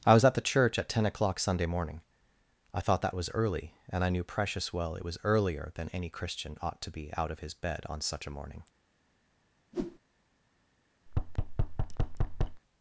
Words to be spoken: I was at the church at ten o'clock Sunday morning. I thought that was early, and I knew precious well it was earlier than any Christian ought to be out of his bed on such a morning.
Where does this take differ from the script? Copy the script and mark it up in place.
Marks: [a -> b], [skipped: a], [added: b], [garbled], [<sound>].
I was at the church at ten o'clock Sunday morning. I thought that was early, and I knew precious well it was earlier than any Christian ought to be out of his bed on such a morning. [whoosh] [thud]